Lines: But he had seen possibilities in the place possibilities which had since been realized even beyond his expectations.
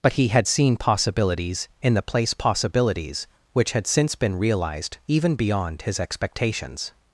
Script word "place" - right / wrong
right